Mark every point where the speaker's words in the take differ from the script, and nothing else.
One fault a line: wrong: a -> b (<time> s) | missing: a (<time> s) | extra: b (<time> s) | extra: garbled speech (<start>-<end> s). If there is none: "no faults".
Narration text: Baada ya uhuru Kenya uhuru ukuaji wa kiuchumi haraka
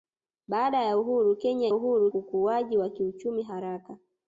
no faults